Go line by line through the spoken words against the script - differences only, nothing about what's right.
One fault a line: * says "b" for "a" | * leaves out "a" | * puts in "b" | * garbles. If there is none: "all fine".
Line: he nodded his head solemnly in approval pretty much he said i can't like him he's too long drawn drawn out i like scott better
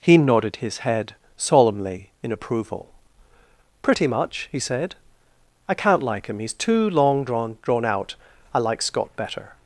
all fine